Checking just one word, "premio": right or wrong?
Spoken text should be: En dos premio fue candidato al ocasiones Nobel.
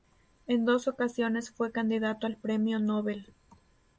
wrong